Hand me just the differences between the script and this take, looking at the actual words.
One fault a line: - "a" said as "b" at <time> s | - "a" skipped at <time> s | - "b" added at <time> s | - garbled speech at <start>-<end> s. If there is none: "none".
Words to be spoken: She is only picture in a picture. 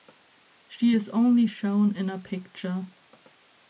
- "picture" said as "shown" at 1.4 s